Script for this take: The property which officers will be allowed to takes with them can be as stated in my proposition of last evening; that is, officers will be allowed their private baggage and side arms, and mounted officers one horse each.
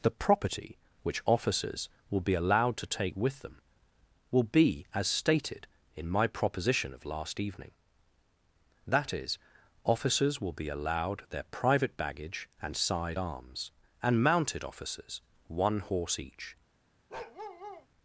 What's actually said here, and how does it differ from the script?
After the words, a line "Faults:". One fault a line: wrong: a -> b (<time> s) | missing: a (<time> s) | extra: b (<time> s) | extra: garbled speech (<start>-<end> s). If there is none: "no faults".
The property which officers will be allowed to take with them will be as stated in my proposition of last evening; that is, officers will be allowed their private baggage and side arms, and mounted officers one horse each.
Faults:
wrong: takes -> take (2.9 s)
wrong: can -> will (4.3 s)